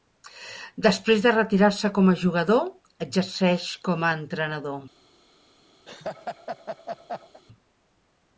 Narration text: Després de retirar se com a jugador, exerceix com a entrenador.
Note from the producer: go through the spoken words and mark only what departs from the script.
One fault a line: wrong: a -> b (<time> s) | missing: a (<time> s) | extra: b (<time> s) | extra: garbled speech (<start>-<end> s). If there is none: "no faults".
no faults